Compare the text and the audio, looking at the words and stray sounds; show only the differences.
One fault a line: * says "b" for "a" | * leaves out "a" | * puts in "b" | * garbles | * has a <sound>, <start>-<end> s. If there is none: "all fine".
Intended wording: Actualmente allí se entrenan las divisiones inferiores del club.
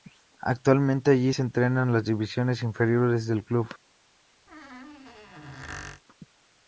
* has a squeak, 4.5-6.0 s